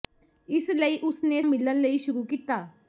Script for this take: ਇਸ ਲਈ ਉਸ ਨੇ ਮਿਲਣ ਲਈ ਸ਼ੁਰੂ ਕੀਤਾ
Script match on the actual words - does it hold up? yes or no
yes